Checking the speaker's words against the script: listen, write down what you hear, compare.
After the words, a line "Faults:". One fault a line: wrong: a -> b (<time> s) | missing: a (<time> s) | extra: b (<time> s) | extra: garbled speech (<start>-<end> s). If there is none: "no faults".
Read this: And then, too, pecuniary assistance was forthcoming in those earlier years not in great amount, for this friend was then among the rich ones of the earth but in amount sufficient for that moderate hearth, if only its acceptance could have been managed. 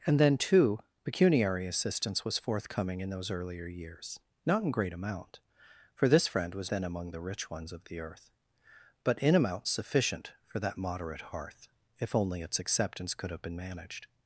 And then, too, pecuniary assistance was forthcoming in those earlier years not in great amount, for this friend was then among the rich ones of the earth but in amount sufficient for that moderate hearth, if only its acceptance could have been managed.
Faults:
no faults